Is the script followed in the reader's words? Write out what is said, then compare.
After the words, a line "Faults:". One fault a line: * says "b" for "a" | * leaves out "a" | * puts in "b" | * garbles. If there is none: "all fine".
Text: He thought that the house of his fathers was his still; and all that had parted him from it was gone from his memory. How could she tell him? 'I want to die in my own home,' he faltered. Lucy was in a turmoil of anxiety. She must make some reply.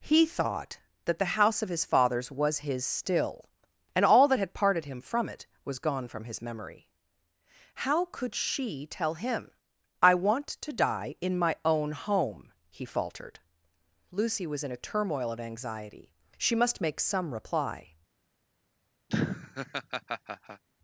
He thought that the house of his fathers was his still; and all that had parted him from it was gone from his memory. How could she tell him? 'I want to die in my own home,' he faltered. Lucy was in a turmoil of anxiety. She must make some reply.
Faults:
all fine